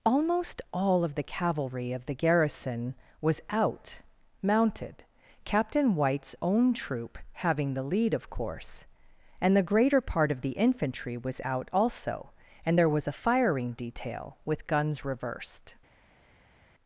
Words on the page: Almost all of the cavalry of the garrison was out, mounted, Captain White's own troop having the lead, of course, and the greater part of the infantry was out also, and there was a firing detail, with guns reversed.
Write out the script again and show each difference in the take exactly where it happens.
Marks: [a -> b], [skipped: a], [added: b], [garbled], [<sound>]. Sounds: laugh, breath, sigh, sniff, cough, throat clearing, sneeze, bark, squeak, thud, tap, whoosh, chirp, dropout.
Almost all of the cavalry of the garrison was out, mounted, Captain White's own troop having the lead, of course, and the greater part of the infantry was out also, and there was a firing detail, with guns reversed.